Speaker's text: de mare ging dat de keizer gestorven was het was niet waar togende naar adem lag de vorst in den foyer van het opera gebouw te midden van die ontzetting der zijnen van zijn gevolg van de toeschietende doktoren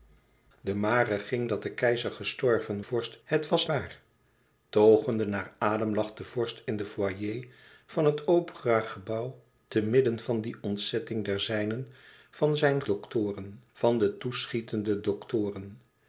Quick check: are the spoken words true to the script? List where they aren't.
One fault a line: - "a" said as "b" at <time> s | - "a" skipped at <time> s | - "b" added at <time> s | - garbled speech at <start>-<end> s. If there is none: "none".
- "was" said as "vorst" at 2.8 s
- "niet" skipped at 3.7 s
- "gevolg" said as "doktoren" at 12.8 s